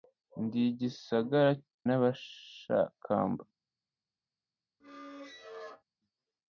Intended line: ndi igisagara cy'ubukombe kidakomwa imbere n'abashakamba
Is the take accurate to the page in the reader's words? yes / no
no